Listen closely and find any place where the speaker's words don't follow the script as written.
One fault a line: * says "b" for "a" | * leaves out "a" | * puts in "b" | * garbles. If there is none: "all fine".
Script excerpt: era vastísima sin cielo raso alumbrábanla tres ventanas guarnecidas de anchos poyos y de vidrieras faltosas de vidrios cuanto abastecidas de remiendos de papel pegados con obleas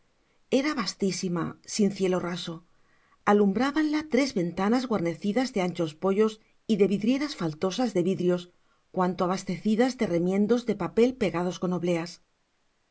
all fine